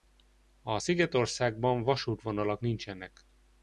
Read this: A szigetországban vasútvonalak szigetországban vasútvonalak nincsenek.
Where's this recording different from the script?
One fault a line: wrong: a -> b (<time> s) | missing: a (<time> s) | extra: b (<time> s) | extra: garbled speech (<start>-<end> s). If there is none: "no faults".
missing: szigetországban vasútvonalak (2.6 s)